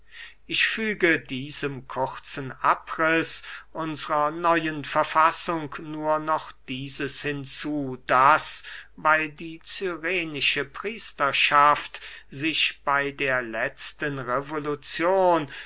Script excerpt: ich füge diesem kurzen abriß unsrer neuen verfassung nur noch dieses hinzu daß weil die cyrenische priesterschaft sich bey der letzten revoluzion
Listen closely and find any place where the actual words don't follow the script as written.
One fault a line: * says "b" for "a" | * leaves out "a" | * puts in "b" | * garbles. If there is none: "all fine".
all fine